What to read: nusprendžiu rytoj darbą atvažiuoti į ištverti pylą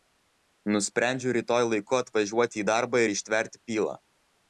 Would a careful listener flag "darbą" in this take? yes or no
yes